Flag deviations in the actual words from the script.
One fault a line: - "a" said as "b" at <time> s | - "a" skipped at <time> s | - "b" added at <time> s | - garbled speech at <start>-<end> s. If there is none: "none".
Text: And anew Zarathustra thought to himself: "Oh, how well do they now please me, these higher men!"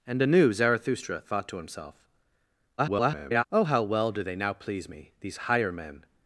- garbled speech at 2.8-3.4 s